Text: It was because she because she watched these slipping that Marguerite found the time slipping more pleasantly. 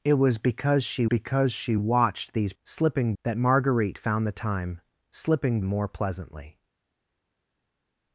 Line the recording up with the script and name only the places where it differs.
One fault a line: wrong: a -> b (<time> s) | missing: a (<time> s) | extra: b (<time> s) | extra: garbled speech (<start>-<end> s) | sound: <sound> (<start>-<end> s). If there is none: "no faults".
no faults